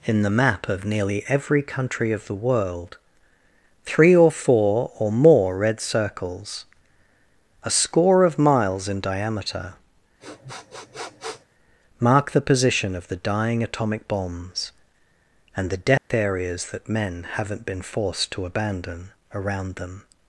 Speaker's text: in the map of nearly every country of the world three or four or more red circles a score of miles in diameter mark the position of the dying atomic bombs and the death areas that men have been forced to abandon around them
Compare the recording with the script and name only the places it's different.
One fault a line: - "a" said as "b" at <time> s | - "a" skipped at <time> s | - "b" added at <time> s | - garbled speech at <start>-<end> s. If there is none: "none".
- "have" said as "haven't" at 17.3 s